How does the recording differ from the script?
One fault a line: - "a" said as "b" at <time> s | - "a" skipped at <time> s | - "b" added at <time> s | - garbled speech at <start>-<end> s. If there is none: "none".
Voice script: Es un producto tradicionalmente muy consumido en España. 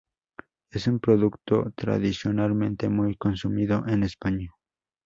none